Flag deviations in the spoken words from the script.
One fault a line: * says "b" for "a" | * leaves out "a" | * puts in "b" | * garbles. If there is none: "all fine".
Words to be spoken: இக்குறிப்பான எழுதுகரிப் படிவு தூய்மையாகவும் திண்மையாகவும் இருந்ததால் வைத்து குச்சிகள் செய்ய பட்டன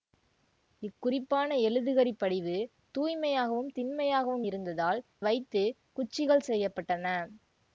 all fine